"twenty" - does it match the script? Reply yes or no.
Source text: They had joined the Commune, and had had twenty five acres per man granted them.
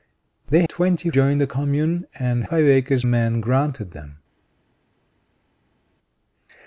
no